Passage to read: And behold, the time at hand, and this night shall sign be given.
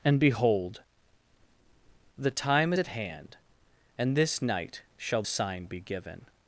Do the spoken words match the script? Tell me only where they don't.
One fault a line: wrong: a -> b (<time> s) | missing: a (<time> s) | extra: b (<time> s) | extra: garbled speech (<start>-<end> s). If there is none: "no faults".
no faults